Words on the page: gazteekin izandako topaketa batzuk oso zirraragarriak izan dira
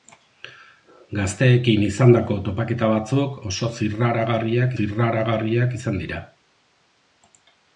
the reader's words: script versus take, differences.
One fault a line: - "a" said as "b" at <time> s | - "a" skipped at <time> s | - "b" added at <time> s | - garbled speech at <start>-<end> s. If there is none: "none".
- "zirraragarriak" added at 4.8 s